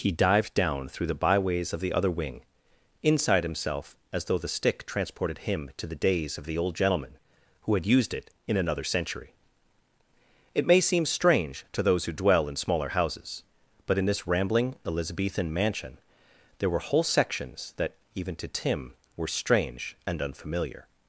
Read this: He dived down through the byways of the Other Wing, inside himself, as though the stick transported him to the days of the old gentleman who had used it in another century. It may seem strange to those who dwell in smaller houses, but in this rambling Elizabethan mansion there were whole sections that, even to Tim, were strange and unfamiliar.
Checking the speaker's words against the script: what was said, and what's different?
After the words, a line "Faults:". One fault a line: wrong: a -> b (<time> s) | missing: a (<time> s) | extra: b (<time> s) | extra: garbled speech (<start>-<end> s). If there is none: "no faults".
He dived down through the byways of the Other Wing, inside himself, as though the stick transported him to the days of the old gentleman who had used it in another century. It may seem strange to those who dwell in smaller houses, but in this rambling Elizabethan mansion there were whole sections that, even to Tim, were strange and unfamiliar.
Faults:
no faults